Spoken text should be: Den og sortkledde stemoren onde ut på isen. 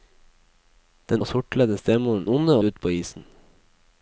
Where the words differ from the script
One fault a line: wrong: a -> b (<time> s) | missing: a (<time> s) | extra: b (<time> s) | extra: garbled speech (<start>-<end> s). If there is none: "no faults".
no faults